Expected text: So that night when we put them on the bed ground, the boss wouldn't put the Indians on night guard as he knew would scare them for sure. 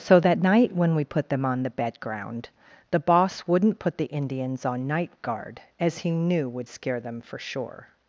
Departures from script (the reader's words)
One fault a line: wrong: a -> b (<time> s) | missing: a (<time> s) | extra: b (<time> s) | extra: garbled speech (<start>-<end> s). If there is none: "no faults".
no faults